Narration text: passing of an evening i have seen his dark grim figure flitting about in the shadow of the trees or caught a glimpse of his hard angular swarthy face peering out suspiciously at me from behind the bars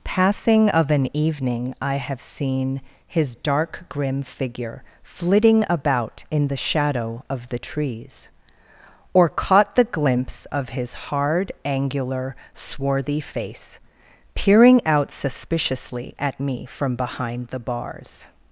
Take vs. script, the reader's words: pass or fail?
fail